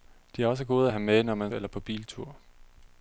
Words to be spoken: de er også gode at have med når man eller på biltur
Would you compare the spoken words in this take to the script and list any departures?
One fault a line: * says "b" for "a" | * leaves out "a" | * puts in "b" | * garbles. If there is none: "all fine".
all fine